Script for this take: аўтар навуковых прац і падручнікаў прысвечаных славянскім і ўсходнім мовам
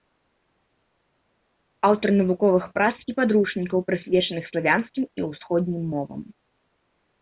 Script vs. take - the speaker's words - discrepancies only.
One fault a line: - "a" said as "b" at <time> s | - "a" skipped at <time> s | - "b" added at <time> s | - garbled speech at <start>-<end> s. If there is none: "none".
none